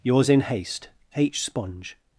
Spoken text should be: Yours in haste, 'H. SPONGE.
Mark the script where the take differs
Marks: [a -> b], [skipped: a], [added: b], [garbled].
Yours in haste, 'H. SPONGE.